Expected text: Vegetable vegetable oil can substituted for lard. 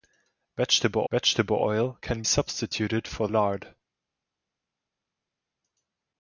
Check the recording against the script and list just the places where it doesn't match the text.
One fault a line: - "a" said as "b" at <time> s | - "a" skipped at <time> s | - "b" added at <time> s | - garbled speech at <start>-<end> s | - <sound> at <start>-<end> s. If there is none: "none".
none